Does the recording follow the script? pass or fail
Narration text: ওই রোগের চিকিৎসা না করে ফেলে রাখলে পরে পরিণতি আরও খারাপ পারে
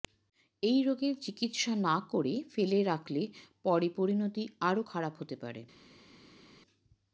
fail